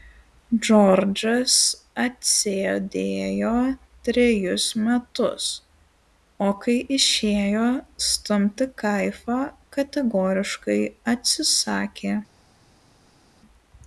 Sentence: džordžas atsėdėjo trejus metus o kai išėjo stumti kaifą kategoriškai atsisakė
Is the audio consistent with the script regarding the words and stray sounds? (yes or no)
yes